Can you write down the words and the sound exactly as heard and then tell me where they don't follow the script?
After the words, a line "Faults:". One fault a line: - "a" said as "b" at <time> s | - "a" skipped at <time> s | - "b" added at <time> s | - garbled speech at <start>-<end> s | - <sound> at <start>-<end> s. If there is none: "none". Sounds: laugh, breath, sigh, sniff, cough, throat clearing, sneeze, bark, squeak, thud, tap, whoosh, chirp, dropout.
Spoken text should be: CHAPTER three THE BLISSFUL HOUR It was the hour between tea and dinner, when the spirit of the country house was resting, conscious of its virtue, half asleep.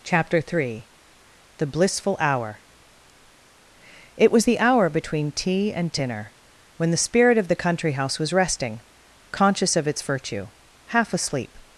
CHAPTER three THE BLISSFUL HOUR It was the hour between tea and dinner, when the spirit of the country house was resting, conscious of its virtue, half asleep.
Faults:
none